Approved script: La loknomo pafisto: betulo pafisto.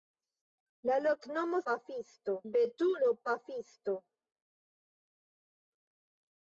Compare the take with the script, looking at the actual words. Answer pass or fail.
pass